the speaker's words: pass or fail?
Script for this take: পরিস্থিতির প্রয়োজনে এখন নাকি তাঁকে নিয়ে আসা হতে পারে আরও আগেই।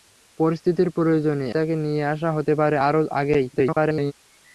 fail